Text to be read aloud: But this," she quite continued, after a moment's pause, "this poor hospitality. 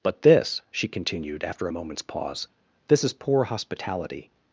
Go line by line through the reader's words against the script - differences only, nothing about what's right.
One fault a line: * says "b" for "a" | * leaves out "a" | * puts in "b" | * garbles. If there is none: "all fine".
* leaves out "quite"
* puts in "is"